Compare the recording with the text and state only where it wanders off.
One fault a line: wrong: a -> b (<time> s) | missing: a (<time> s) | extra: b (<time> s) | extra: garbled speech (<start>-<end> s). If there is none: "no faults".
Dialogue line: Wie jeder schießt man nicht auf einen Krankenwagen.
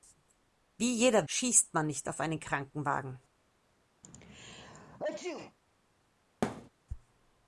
no faults